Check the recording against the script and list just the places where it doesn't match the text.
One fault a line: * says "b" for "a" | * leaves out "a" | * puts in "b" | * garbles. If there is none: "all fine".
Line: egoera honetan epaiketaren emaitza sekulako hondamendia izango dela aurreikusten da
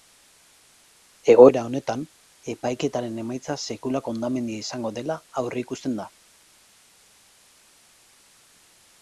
all fine